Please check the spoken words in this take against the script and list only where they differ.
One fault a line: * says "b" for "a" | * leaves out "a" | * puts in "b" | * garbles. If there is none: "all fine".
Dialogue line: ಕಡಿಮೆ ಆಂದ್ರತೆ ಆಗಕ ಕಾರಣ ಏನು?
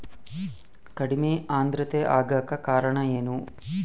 all fine